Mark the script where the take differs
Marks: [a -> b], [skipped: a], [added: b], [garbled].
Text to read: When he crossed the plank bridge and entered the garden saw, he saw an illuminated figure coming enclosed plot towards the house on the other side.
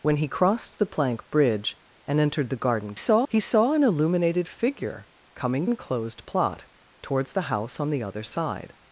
When he crossed the plank bridge and entered the garden saw, he saw an illuminated figure coming enclosed plot towards the house on the other side.